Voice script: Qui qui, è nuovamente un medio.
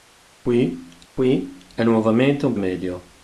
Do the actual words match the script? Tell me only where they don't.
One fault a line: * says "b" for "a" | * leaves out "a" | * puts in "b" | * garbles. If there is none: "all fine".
all fine